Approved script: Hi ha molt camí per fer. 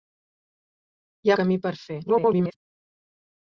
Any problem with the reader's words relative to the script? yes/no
yes